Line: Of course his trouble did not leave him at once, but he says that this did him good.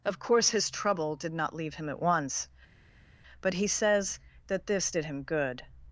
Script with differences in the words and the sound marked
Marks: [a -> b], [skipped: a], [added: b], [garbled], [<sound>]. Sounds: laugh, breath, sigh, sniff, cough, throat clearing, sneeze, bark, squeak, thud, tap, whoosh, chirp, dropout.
Of course his trouble did not leave him at once, but he says that this did him good.